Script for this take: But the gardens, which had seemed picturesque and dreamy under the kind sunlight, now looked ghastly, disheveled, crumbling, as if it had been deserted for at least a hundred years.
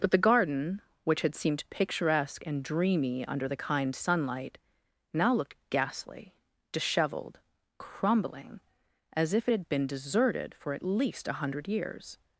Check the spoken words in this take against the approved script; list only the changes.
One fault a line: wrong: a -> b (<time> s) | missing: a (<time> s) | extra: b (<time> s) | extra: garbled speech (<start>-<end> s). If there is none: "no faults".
wrong: gardens -> garden (0.3 s)